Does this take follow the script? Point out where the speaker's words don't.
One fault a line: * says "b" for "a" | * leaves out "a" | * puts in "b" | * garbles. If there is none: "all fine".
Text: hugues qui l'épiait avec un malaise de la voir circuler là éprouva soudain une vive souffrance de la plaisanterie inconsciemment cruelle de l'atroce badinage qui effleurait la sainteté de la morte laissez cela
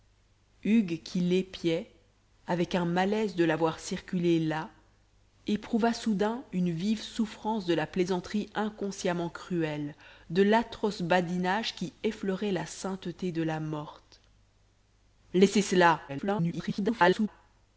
* garbles